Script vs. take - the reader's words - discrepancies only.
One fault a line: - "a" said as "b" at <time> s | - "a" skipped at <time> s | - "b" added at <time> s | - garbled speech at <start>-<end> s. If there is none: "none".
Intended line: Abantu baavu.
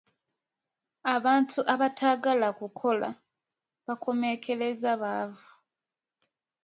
- "abataagala kukola bakomekkereza" added at 1.7 s